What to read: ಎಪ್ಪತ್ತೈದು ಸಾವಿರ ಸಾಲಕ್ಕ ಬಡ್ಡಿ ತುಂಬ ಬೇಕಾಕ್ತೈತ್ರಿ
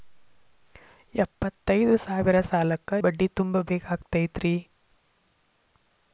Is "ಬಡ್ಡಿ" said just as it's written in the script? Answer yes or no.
yes